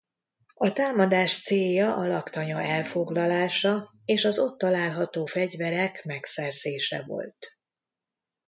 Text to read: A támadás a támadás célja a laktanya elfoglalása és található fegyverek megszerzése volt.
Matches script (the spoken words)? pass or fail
fail